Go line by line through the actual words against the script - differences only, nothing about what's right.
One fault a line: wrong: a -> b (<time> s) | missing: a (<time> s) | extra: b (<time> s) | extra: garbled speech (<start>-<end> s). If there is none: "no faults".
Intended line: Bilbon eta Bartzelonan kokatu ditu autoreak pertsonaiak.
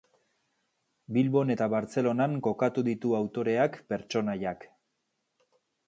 no faults